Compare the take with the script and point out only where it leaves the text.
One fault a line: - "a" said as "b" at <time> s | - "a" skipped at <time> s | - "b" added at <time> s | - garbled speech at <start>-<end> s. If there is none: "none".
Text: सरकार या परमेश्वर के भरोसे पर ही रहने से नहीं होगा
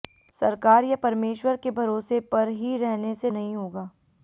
none